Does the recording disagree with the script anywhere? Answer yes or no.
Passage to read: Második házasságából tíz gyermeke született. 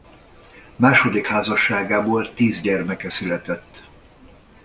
no